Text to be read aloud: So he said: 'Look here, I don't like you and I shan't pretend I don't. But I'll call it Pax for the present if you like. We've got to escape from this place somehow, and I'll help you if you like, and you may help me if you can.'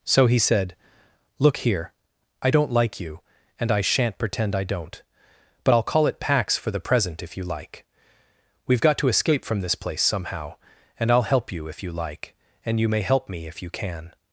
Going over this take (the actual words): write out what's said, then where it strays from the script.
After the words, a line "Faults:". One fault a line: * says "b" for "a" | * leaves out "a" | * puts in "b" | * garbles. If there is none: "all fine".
So he said: 'Look here, I don't like you and I shan't pretend I don't. But I'll call it Pax for the present if you like. We've got to escape from this place somehow, and I'll help you if you like, and you may help me if you can.'
Faults:
all fine